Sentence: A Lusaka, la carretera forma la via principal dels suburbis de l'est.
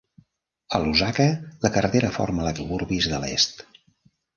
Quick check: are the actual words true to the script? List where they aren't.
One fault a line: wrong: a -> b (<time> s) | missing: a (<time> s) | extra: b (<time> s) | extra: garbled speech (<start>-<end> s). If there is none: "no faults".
missing: via principal dels (2.5 s)